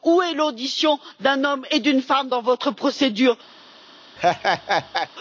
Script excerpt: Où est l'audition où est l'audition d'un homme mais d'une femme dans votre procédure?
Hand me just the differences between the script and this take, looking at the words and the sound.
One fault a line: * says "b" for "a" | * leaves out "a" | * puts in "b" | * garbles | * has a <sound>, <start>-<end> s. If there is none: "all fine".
* leaves out "où est l'audition"
* says "et" for "mais"
* has a laugh, 4.2-5.1 s